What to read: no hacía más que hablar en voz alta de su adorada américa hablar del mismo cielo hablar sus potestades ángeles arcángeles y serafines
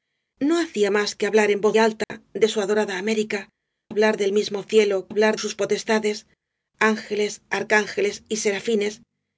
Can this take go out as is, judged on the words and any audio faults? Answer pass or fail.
fail